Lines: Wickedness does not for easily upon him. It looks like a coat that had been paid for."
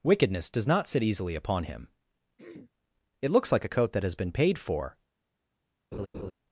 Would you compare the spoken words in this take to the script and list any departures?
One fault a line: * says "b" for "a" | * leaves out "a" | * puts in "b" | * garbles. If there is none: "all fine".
* says "sit" for "for"
* says "has" for "had"